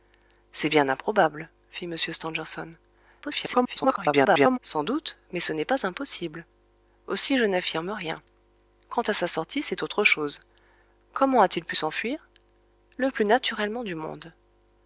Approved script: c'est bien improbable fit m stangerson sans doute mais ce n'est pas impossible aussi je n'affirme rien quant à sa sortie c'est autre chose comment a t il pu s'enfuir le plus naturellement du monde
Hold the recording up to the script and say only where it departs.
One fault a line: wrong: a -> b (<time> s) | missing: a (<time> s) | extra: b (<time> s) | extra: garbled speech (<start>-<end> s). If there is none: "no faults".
extra: garbled speech (3.2-4.6 s)